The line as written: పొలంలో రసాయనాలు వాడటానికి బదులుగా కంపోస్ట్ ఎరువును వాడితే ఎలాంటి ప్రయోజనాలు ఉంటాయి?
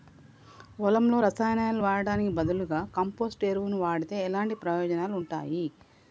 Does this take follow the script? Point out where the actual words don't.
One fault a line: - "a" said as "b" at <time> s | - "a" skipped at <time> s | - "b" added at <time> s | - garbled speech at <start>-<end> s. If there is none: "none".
none